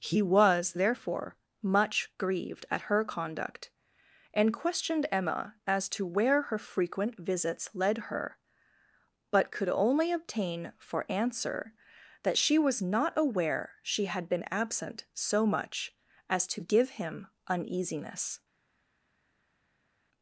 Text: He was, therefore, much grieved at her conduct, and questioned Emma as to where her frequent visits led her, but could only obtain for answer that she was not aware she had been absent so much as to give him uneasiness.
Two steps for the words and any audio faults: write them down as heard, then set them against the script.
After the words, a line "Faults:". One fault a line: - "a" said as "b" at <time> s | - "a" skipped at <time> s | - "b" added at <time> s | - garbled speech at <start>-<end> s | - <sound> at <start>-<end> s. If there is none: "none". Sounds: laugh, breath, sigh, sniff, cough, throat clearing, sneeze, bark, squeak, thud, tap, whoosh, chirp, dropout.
He was, therefore, much grieved at her conduct, and questioned Emma as to where her frequent visits led her, but could only obtain for answer that she was not aware she had been absent so much as to give him uneasiness.
Faults:
none